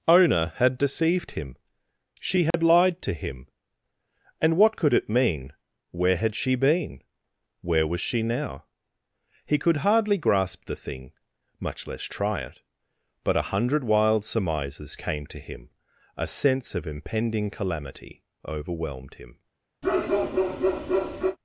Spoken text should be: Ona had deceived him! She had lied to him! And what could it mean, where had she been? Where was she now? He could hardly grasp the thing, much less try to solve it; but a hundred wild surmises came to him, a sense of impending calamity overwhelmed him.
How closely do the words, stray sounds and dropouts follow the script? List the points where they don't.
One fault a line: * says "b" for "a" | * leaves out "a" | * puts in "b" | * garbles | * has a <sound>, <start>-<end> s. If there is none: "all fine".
* has a dropout, 2.5-2.5 s
* leaves out "to solve"
* has a bark, 19.8-21.4 s